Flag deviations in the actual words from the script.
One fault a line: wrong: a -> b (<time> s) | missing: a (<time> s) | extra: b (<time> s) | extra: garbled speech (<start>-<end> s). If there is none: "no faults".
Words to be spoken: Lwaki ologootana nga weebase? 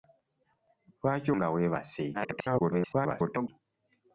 missing: ologootana (1.3 s)
extra: garbled speech (2.1-3.5 s)